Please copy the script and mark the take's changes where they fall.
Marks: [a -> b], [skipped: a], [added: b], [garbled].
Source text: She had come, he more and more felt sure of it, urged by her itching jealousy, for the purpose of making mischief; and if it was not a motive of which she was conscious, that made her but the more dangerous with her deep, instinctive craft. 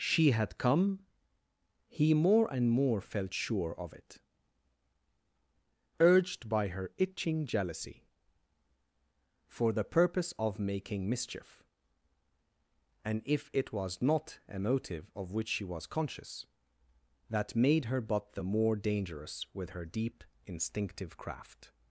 She had come, he more and more felt sure of it, urged by her itching jealousy, for the purpose of making mischief; and if it was not a motive of which she was conscious, that made her but the more dangerous with her deep, instinctive craft.